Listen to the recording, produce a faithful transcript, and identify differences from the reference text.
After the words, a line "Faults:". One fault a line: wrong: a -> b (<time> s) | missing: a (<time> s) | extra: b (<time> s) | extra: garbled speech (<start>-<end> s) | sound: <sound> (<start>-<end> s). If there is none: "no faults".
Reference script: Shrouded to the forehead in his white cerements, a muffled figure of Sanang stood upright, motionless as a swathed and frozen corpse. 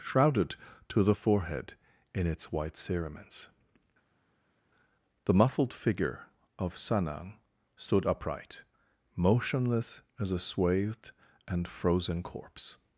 Shrouded to the forehead in its white cerements, the muffled figure of Sanang stood upright, motionless as a swathed and frozen corpse.
Faults:
wrong: his -> its (2.2 s)
wrong: a -> the (5.2 s)